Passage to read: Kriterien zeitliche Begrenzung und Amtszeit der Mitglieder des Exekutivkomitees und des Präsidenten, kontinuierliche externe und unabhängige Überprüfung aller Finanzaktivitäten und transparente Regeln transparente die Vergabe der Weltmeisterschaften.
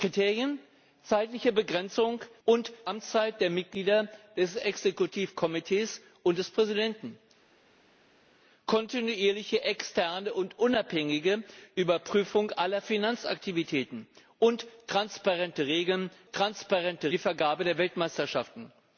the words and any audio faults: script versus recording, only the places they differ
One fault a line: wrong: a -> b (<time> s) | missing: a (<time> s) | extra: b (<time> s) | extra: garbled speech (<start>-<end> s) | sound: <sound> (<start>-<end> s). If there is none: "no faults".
no faults